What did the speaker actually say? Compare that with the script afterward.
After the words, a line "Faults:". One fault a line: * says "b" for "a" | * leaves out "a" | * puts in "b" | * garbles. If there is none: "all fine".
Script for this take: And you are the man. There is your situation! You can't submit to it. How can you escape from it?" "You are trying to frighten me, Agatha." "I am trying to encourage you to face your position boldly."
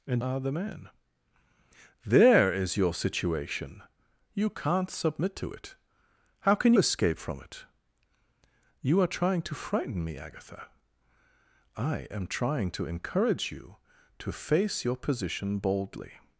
And are the man. There is your situation! You can't submit to it. How can escape from it?" "You are trying to frighten me, Agatha." "I am trying to encourage you to face your position boldly."
Faults:
* leaves out "you"
* leaves out "you"